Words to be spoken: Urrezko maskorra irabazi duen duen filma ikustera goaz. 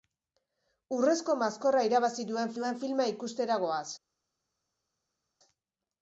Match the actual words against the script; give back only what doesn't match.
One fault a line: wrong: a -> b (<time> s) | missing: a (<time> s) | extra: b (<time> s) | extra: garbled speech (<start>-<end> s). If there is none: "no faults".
no faults